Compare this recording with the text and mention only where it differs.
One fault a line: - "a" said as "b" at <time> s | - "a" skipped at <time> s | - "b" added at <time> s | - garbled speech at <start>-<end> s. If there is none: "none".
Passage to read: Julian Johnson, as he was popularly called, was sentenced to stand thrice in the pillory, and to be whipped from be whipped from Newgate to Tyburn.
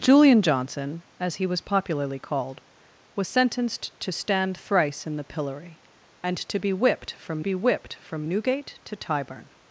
none